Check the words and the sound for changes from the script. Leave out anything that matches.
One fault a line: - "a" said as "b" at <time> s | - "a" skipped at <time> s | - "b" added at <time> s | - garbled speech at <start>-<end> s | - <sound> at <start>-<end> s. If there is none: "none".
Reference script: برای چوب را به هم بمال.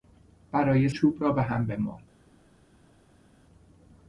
none